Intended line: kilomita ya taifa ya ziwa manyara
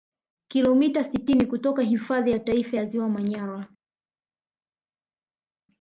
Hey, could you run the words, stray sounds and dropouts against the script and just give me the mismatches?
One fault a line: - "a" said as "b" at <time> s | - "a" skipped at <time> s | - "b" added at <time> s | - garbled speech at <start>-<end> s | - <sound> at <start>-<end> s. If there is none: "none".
- "sitini kutoka hifadhi" added at 1.0 s